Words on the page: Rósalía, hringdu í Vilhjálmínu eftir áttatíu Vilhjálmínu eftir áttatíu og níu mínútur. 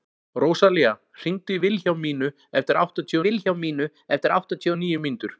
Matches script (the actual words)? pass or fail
pass